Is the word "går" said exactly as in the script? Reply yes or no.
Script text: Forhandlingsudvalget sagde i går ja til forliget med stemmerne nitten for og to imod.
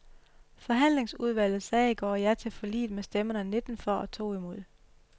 yes